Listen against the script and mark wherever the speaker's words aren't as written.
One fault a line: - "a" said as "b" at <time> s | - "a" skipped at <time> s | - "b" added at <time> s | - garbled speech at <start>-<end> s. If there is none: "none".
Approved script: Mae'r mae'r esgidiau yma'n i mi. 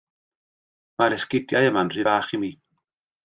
- "mae'r" skipped at 1.1 s
- "rhy fach" added at 1.9 s